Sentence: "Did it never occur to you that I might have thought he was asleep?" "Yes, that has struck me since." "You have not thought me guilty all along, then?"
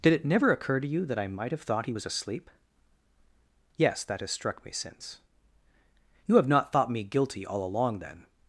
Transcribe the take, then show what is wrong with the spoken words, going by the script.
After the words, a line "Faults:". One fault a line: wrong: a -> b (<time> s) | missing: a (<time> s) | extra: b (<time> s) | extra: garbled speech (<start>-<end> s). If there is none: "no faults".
"Did it never occur to you that I might have thought he was asleep?" "Yes, that has struck me since." "You have not thought me guilty all along, then?"
Faults:
no faults